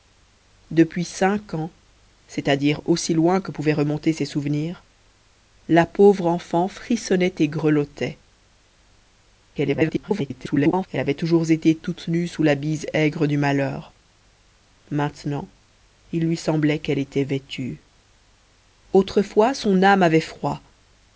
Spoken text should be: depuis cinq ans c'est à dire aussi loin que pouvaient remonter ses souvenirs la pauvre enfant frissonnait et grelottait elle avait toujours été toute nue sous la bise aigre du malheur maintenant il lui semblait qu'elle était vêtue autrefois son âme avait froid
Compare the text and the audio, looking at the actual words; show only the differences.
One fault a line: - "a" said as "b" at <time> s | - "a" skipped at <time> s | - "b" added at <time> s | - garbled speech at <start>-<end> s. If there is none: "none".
- garbled speech at 9.5-10.9 s